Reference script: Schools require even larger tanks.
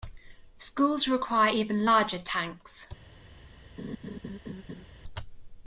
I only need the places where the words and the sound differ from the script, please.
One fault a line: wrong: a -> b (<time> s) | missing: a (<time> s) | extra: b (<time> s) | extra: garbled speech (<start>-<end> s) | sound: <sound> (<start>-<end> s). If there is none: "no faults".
sound: laugh (3.8-4.8 s)